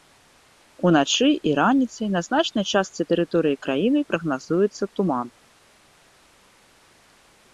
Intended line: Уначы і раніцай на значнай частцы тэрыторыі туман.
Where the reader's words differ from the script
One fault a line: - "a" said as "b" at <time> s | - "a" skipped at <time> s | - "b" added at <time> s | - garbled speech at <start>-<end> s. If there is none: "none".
- "краіны прагназуецца" added at 3.7 s